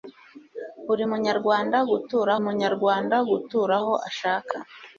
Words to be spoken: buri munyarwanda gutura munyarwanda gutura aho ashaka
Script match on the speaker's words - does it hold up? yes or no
yes